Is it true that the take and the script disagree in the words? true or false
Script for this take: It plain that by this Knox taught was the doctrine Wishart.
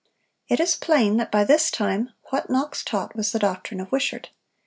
true